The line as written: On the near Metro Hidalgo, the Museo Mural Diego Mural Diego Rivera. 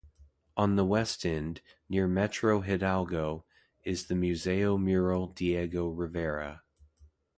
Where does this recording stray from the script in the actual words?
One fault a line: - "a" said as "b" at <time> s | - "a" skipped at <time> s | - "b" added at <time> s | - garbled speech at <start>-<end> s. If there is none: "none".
- "west end" added at 0.8 s
- "is" added at 3.8 s
- "Mural Diego" skipped at 5.9 s